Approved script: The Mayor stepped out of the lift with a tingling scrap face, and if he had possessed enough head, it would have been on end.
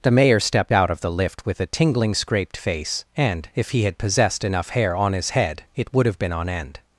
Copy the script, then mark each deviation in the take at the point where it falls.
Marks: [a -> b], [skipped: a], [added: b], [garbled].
The Mayor stepped out of the lift with a tingling [scrap -> scraped] face, and if he had possessed enough [added: hair on his] head, it would have been on end.